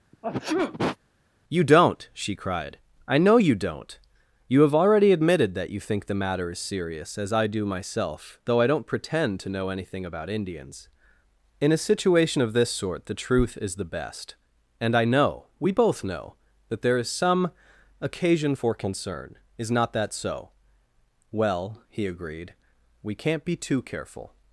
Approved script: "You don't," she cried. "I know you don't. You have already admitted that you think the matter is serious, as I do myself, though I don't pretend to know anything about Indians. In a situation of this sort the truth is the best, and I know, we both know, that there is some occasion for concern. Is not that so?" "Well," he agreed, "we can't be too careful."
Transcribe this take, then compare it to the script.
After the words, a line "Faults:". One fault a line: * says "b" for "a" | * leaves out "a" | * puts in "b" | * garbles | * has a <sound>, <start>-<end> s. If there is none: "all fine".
"You don't," she cried. "I know you don't. You have already admitted that you think the matter is serious, as I do myself, though I don't pretend to know anything about Indians. In a situation of this sort the truth is the best, and I know, we both know, that there is some occasion for concern. Is not that so?" "Well," he agreed, "we can't be too careful."
Faults:
* has a sneeze, 0.1-1.0 s